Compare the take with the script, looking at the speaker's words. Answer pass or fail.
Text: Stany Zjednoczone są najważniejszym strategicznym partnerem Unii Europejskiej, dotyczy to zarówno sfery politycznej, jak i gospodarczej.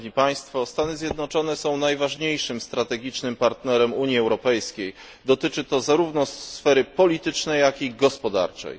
pass